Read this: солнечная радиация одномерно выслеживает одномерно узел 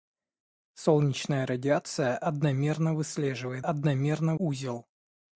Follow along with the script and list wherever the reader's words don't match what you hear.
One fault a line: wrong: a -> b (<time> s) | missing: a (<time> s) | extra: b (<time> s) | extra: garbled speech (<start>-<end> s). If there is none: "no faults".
no faults